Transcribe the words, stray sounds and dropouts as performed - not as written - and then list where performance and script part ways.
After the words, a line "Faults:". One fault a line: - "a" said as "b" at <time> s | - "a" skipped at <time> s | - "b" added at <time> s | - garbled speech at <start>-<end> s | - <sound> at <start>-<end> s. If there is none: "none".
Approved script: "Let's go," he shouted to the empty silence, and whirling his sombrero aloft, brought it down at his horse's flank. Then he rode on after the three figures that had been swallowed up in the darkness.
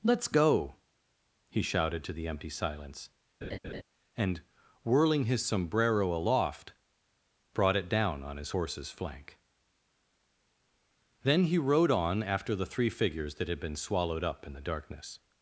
"Let's go," he shouted to the empty silence, and whirling his sombrero aloft, brought it down on his horse's flank. Then he rode on after the three figures that had been swallowed up in the darkness.
Faults:
- laugh at 3.4-3.8 s
- "at" said as "on" at 8.2 s